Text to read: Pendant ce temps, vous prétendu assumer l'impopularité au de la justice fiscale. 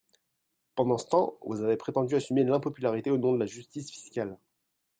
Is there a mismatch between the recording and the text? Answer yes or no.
yes